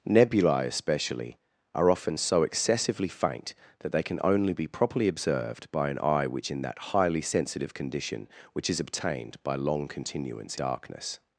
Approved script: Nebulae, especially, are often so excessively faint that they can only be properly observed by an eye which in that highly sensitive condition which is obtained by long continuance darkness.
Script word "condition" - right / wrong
right